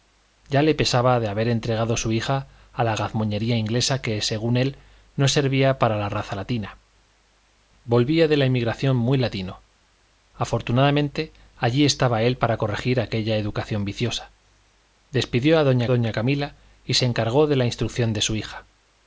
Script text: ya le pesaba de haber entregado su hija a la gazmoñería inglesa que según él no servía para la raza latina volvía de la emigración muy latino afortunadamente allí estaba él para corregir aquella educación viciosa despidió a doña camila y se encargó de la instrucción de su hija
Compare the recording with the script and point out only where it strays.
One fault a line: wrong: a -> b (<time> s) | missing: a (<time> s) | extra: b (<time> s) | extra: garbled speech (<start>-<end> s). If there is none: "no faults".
extra: doña (15.9 s)